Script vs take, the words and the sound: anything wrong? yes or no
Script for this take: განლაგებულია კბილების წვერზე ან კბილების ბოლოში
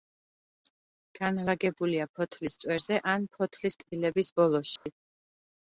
yes